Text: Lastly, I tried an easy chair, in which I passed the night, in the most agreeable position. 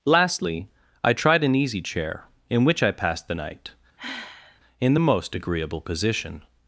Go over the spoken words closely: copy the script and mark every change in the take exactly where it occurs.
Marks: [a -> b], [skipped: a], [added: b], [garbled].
Lastly, I tried an easy chair, in which I passed the night, in the most agreeable position.